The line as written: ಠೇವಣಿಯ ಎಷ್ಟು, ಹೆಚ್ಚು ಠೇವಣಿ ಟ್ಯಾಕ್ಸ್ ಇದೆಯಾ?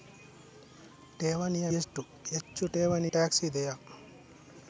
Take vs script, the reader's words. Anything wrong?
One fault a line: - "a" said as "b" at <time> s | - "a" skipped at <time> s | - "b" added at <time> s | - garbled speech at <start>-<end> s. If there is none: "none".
none